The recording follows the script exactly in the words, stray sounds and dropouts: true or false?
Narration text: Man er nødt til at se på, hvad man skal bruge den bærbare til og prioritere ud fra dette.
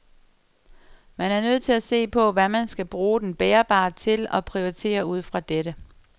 true